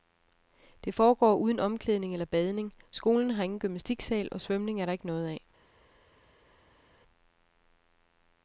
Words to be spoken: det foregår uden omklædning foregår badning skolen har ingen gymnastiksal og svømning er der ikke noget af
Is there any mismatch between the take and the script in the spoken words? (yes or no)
yes